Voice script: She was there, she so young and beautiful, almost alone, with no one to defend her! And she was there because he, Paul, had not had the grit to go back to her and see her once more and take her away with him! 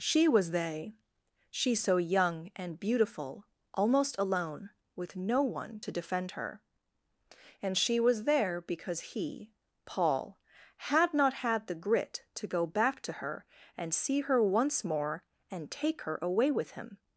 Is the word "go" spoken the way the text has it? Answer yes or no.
yes